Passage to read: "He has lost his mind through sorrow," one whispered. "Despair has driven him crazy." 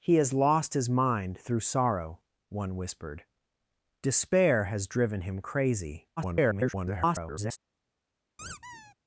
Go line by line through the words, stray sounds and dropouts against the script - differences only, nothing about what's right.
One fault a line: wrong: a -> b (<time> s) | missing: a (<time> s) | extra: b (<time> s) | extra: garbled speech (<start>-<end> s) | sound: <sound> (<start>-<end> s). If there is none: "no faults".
extra: garbled speech (6.2-7.6 s)
sound: squeak (8.4-8.9 s)